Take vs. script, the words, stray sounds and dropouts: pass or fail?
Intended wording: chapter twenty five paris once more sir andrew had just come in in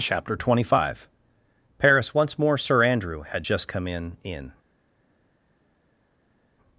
pass